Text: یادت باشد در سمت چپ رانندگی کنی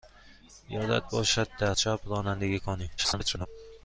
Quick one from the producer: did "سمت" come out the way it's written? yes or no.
no